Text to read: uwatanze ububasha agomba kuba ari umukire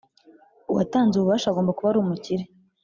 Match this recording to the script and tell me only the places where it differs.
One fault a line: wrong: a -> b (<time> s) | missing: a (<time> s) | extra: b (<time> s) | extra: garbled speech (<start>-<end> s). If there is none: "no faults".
no faults